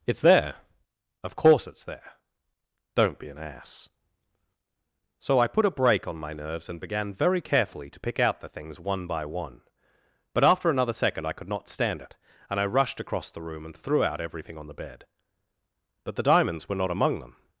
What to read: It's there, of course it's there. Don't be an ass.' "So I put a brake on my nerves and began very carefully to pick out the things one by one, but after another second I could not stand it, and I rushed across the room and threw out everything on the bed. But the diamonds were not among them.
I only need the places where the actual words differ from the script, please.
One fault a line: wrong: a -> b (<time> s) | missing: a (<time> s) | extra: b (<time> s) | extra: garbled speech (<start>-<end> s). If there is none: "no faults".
no faults